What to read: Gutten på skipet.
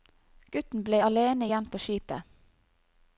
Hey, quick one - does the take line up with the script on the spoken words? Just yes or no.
no